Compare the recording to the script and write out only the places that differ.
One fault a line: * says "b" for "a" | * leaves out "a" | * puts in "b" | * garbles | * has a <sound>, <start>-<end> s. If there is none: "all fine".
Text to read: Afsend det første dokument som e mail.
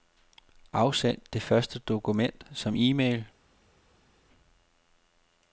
all fine